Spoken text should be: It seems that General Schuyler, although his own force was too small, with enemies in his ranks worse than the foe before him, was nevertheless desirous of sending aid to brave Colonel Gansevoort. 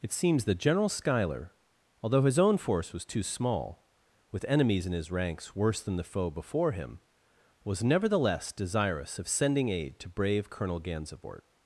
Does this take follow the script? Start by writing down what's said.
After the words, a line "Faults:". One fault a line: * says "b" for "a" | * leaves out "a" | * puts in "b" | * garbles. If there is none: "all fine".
It seems that General Schuyler, although his own force was too small, with enemies in his ranks worse than the foe before him, was nevertheless desirous of sending aid to brave Colonel Gansevoort.
Faults:
all fine